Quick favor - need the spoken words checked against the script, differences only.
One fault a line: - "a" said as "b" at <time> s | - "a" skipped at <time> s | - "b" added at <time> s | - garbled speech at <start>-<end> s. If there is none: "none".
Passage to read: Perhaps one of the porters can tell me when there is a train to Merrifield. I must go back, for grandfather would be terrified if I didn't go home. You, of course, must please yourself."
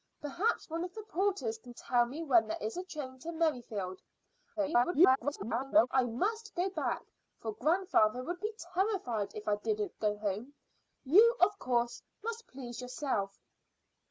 - garbled speech at 4.6-5.9 s